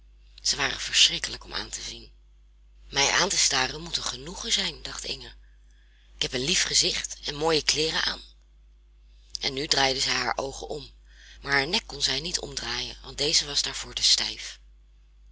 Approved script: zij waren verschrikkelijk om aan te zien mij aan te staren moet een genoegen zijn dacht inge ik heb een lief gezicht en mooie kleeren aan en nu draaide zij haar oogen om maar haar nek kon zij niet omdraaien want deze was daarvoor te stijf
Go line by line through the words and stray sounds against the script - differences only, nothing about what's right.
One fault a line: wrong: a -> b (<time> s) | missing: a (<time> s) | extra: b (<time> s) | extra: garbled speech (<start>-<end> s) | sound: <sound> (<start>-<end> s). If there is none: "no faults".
no faults